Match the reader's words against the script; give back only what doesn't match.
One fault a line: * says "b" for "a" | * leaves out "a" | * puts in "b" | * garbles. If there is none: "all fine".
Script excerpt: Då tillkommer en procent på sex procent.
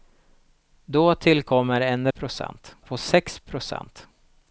all fine